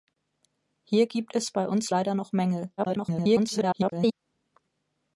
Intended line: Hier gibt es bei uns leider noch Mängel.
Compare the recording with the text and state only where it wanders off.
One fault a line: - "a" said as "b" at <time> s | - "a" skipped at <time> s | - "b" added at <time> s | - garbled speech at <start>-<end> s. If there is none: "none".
- garbled speech at 2.8-4.1 s